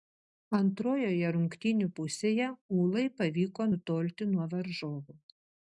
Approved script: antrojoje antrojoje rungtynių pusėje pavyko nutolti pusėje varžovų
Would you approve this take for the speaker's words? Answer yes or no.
no